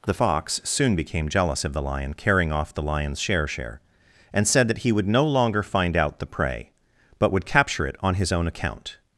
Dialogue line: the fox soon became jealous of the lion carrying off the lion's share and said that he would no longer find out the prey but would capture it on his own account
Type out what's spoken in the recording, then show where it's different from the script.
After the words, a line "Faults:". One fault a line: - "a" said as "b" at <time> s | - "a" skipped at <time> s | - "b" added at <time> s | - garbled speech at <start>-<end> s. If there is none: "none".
the fox soon became jealous of the lion carrying off the lion's share share and said that he would no longer find out the prey but would capture it on his own account
Faults:
- "share" added at 3.5 s